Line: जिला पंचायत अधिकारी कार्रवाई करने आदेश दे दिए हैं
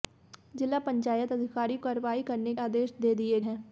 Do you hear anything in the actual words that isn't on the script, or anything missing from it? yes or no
no